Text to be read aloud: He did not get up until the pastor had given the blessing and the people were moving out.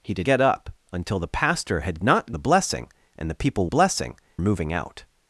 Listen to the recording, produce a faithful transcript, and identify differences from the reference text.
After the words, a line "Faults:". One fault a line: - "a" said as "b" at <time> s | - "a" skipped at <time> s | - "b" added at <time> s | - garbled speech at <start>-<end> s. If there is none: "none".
He did get up until the pastor had not the blessing and the people blessing moving out.
Faults:
- "not" skipped at 0.3 s
- "given" said as "not" at 2.0 s
- "were" said as "blessing" at 3.7 s